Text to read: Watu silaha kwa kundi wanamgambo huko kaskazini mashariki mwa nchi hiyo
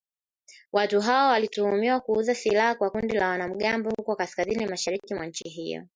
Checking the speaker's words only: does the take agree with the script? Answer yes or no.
no